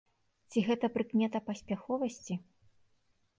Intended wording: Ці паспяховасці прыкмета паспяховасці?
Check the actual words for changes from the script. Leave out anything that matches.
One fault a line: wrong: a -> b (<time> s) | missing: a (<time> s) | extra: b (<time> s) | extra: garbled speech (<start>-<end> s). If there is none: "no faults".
wrong: паспяховасці -> гэта (0.7 s)